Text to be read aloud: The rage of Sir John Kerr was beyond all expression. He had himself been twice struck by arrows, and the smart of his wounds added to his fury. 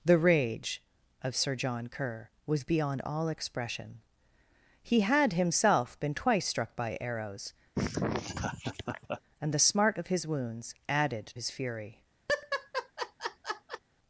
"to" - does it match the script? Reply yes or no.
no